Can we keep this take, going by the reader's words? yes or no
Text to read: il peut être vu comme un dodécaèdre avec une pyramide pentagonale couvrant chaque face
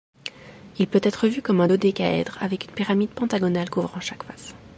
yes